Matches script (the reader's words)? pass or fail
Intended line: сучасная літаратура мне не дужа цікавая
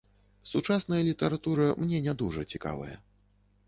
pass